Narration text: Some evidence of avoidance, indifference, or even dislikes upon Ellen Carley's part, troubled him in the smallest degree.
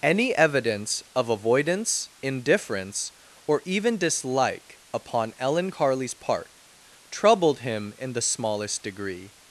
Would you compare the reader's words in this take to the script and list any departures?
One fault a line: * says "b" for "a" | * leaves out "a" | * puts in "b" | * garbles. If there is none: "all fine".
* says "Any" for "Some"
* says "dislike" for "dislikes"